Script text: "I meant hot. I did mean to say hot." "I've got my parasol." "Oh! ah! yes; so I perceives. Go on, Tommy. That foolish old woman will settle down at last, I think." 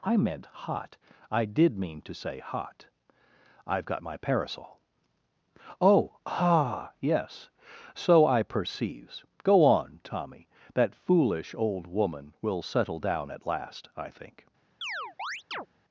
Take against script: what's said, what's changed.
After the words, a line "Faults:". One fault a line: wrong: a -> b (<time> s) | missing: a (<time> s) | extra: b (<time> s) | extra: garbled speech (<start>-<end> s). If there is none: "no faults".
"I meant hot. I did mean to say hot." "I've got my parasol." "Oh! ah! yes; so I perceives. Go on, Tommy. That foolish old woman will settle down at last, I think."
Faults:
no faults